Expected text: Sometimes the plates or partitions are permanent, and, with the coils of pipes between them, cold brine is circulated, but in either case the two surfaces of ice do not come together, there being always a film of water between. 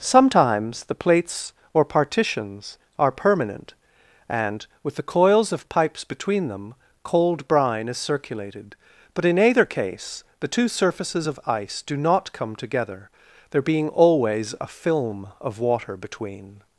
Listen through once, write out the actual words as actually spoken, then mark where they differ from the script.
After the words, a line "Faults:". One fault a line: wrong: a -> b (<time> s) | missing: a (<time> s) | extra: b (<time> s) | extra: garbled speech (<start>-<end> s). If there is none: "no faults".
Sometimes the plates or partitions are permanent, and, with the coils of pipes between them, cold brine is circulated, but in either case the two surfaces of ice do not come together, there being always a film of water between.
Faults:
no faults